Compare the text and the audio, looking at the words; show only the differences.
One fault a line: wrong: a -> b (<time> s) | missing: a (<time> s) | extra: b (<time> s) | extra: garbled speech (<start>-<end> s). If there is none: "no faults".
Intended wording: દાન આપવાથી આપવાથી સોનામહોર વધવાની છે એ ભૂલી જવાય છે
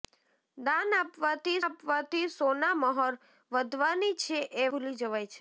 no faults